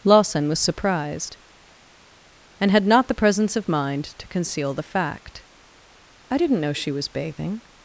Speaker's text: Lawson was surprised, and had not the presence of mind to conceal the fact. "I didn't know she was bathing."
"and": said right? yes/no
yes